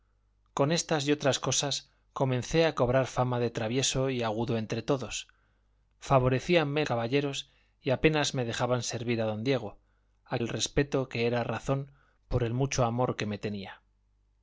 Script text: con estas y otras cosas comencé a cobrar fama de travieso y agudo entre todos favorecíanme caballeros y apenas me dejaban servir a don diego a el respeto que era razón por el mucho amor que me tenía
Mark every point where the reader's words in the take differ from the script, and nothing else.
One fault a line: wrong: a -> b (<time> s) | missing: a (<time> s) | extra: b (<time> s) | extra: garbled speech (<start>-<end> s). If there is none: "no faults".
no faults